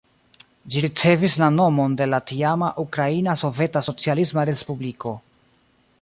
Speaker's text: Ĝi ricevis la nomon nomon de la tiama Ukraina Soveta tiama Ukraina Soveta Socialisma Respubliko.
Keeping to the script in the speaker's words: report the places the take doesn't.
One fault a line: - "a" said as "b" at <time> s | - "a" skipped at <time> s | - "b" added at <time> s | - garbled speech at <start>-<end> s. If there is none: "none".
- "nomon" skipped at 2.0 s
- "tiama Ukraina Soveta" skipped at 3.8 s